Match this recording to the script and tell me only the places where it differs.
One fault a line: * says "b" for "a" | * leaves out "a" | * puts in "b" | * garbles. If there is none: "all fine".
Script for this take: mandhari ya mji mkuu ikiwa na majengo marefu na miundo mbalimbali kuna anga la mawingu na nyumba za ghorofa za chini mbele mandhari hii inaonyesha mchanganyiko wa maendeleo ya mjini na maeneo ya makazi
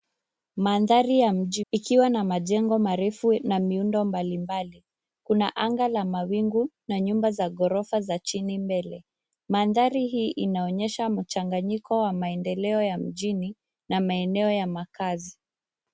* leaves out "mkuu"